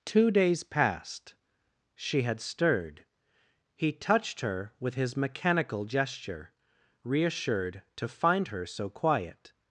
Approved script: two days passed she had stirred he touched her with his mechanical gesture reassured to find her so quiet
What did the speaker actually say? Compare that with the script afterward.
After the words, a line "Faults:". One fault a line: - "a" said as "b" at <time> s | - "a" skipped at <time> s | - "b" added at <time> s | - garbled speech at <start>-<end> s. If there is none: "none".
two days passed she had stirred he touched her with his mechanical gesture reassured to find her so quiet
Faults:
none